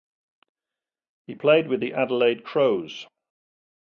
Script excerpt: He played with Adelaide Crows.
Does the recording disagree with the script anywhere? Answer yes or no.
yes